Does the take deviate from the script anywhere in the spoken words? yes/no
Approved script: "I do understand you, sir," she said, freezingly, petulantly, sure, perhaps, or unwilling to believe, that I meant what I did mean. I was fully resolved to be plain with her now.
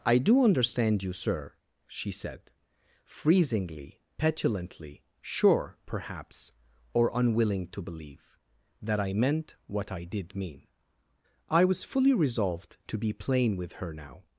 no